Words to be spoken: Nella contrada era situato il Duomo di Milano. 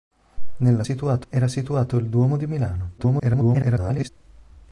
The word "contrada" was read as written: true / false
false